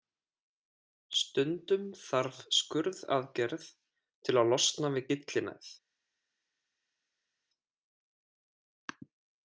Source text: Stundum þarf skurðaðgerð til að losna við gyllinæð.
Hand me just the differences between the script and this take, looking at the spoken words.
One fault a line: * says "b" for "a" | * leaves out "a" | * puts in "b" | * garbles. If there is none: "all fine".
all fine